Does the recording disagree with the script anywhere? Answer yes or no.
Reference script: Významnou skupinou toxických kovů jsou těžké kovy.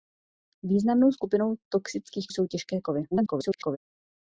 yes